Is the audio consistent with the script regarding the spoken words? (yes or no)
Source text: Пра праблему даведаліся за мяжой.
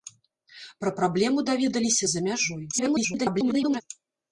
no